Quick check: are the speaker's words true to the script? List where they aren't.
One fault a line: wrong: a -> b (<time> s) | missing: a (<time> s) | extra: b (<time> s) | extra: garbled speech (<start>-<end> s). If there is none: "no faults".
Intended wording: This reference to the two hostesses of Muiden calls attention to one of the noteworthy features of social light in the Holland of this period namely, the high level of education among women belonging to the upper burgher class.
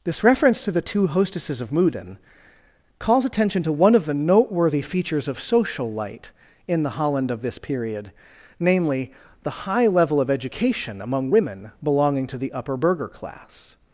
no faults